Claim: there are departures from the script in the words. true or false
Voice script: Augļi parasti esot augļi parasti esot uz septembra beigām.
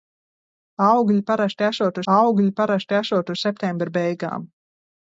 false